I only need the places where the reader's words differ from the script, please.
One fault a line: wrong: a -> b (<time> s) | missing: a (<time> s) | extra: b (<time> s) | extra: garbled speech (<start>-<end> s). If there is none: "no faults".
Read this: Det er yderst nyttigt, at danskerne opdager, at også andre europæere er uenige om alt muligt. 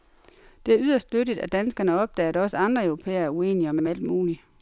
extra: om (3.8 s)